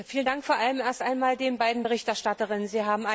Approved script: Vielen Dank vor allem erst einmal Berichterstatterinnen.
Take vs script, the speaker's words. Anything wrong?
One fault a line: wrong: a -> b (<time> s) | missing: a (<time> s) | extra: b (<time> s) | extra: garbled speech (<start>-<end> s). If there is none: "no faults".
extra: den beiden (1.4 s)